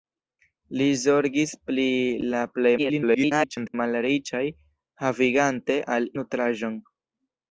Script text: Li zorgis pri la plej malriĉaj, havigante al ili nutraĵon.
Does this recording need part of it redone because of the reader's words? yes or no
yes